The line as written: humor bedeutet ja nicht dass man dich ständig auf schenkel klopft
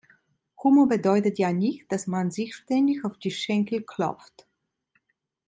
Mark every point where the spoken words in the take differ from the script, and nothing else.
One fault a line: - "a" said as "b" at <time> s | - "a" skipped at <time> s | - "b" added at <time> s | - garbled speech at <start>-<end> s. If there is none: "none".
- "dich" said as "sich" at 2.3 s
- "die" added at 3.2 s